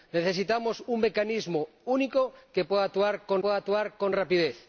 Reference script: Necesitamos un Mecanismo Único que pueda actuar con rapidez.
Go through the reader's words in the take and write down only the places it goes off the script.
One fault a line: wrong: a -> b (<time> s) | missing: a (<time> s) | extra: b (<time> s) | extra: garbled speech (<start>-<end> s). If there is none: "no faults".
extra: pueda actuar con (3.4 s)